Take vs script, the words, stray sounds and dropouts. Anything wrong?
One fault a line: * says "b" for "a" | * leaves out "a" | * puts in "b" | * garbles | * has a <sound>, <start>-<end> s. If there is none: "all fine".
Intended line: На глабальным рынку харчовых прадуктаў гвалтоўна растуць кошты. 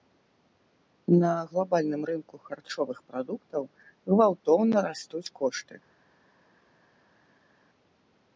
all fine